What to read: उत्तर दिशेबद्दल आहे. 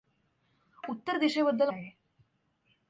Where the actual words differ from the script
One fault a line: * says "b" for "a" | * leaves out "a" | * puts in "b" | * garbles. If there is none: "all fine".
all fine